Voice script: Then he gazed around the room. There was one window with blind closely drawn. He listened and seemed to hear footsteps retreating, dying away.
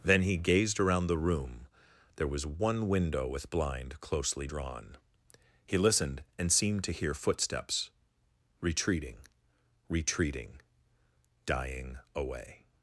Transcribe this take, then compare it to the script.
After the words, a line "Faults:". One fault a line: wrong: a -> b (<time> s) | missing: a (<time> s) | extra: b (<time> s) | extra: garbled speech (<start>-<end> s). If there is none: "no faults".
Then he gazed around the room. There was one window with blind closely drawn. He listened and seemed to hear footsteps retreating retreating, dying away.
Faults:
extra: retreating (9.9 s)